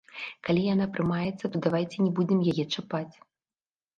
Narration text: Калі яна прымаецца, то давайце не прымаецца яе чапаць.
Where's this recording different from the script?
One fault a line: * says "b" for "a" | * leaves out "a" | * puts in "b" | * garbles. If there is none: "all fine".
* says "будзем" for "прымаецца"